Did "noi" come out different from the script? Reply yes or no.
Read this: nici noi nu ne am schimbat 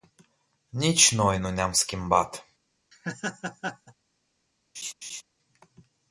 no